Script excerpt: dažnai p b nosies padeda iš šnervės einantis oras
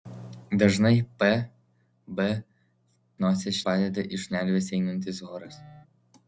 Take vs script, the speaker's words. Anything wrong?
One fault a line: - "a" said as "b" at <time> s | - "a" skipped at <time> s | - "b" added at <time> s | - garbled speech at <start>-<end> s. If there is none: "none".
none